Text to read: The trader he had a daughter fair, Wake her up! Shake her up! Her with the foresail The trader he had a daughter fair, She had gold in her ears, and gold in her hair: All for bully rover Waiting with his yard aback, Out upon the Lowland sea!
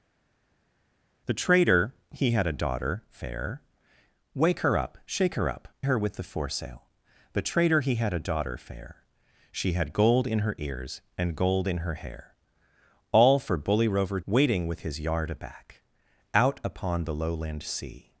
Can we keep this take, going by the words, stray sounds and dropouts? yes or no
yes